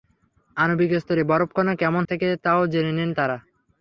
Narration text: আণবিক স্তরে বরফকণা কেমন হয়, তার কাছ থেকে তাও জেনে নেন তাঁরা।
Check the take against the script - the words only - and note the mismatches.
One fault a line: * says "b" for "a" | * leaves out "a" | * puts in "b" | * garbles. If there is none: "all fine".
* leaves out "হয় তার কাছ"